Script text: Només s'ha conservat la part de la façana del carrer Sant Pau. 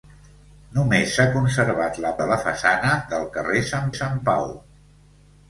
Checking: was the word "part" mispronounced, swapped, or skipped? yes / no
yes